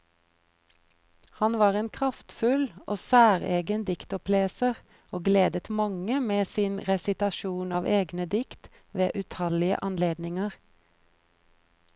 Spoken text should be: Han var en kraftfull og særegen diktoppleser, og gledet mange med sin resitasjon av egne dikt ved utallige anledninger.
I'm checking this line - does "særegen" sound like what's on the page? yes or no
yes